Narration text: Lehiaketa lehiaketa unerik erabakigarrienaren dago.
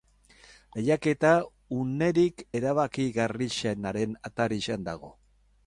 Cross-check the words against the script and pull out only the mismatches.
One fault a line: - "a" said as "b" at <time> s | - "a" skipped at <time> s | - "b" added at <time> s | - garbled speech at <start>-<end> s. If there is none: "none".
- "lehiaketa" skipped at 1.3 s
- "atarian" added at 4.3 s